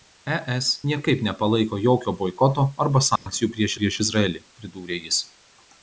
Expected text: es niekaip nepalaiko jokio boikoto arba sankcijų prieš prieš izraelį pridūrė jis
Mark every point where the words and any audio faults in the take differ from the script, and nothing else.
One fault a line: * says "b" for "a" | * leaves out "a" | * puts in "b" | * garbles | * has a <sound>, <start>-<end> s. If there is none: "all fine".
* has a dropout, 3.2-3.3 s